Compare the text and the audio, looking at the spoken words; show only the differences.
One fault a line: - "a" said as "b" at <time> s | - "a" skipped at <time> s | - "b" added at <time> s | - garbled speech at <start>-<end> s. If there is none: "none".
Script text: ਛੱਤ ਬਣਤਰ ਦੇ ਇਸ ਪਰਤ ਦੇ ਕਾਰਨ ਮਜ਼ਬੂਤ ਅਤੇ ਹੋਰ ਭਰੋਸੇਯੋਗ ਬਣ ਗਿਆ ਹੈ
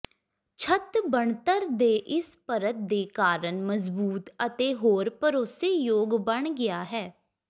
none